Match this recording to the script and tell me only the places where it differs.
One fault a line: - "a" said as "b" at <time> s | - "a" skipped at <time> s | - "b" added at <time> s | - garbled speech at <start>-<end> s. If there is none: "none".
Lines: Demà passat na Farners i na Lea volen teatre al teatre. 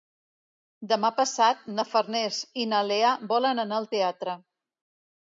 - "teatre" said as "anar" at 3.6 s